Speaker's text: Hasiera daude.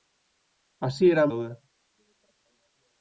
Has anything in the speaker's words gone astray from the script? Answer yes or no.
no